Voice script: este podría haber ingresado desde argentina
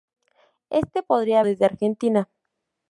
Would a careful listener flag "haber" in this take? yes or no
yes